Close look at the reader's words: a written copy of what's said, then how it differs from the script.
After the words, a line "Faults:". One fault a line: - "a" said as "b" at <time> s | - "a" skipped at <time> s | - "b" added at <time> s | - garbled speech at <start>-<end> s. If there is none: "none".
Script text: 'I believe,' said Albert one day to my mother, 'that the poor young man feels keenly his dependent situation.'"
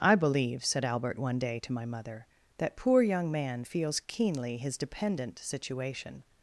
'I believe,' said Albert one day to my mother, 'that poor young man feels keenly his dependent situation.'"
Faults:
- "the" skipped at 2.8 s